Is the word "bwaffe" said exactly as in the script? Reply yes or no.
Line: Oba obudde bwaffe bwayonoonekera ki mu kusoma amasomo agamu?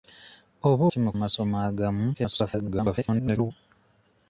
no